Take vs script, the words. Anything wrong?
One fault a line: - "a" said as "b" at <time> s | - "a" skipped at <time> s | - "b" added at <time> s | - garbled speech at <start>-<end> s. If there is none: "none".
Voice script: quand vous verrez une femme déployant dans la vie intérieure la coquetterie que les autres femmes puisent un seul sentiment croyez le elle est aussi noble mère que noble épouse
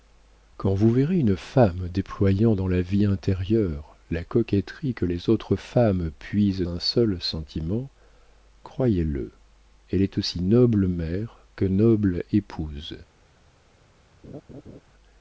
none